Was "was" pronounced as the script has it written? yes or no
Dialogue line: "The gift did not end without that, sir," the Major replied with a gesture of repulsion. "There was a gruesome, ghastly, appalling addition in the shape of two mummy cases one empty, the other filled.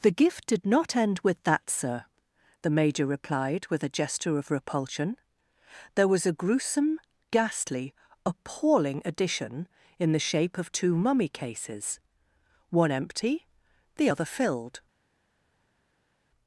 yes